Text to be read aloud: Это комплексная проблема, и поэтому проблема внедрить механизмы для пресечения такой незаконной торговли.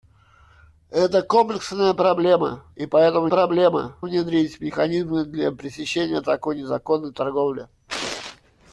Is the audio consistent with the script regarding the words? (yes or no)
yes